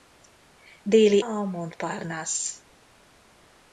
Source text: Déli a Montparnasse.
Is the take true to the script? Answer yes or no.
yes